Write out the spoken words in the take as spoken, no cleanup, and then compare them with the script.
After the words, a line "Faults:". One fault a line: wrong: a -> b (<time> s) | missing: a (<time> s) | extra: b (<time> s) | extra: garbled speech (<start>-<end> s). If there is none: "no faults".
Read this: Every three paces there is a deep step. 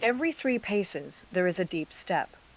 Every three paces there is a deep step.
Faults:
no faults